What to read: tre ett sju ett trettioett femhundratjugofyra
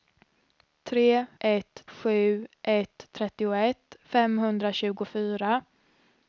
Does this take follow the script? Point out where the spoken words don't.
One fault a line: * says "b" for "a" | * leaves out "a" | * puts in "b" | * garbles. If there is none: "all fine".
all fine